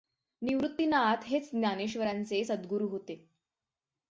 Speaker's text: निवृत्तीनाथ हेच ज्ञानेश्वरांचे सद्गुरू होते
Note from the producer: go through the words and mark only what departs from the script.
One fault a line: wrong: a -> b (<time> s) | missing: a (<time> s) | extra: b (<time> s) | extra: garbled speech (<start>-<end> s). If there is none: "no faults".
no faults